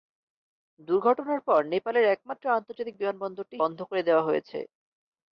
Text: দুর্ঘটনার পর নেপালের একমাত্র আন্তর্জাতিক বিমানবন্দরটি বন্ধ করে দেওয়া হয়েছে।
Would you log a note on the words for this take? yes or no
no